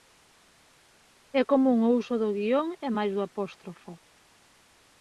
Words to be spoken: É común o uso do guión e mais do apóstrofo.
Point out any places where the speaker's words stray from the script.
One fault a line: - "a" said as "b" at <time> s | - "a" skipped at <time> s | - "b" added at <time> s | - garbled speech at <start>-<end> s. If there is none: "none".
none